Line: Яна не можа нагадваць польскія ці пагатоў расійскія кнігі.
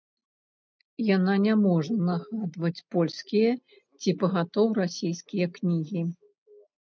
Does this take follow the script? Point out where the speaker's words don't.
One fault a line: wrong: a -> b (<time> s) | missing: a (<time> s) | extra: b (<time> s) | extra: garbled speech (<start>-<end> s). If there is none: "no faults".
no faults